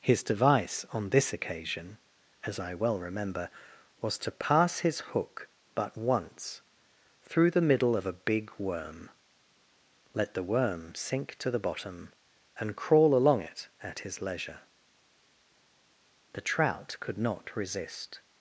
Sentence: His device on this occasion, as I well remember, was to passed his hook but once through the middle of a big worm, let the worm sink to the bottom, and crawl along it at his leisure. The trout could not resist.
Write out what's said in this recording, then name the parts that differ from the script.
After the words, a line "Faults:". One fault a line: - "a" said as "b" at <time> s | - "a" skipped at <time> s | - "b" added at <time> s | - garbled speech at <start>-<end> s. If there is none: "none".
His device on this occasion, as I well remember, was to pass his hook but once through the middle of a big worm, let the worm sink to the bottom, and crawl along it at his leisure. The trout could not resist.
Faults:
- "passed" said as "pass" at 4.3 s